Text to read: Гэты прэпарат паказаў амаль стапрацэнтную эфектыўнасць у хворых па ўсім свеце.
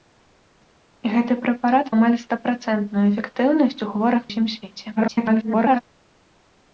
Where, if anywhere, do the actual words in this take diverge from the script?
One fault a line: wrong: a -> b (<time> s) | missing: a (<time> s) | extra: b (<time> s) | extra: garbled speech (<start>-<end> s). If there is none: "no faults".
missing: паказаў (1.9 s)
missing: па (4.2 s)
extra: garbled speech (5.0-5.8 s)